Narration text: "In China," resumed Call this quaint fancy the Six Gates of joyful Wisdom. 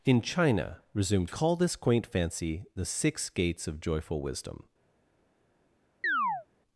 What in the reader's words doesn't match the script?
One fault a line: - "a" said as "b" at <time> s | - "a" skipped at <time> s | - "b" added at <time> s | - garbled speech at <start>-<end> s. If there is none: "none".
none